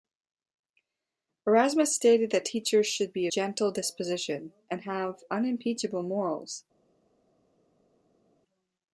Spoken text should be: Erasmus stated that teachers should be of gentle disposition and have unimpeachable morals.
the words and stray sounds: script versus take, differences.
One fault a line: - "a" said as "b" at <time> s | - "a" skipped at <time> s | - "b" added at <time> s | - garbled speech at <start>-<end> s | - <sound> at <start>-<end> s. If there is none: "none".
- "of" skipped at 3.3 s